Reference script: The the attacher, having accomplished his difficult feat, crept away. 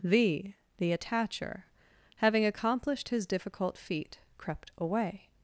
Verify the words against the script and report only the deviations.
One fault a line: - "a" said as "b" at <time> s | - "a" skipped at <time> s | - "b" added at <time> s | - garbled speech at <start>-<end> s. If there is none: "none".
none